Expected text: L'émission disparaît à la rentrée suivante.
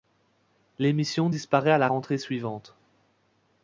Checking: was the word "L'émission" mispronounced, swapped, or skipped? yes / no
no